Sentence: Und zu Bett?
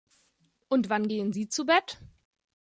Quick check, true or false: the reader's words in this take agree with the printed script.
false